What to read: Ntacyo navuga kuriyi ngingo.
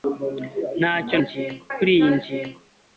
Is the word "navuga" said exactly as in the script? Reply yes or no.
no